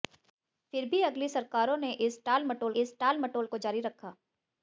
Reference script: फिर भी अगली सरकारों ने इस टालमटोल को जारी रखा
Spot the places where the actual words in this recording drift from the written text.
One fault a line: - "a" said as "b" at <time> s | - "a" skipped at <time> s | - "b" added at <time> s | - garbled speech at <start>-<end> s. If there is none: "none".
- "इस टालमटोल" added at 2.8 s